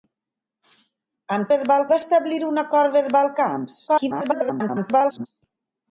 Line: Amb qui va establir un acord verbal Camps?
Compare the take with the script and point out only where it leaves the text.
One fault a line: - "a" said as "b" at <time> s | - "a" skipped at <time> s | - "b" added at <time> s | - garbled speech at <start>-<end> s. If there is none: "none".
- "qui" said as "verbal" at 1.5 s
- garbled speech at 3.9-5.3 s